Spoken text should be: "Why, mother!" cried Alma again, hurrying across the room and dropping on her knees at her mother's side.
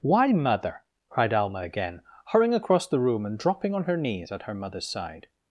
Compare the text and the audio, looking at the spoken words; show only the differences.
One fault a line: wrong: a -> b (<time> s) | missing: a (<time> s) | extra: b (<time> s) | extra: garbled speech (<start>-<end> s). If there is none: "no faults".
no faults